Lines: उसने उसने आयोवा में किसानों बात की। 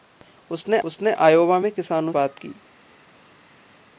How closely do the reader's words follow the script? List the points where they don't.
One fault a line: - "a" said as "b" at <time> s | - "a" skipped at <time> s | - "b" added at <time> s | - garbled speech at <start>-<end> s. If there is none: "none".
none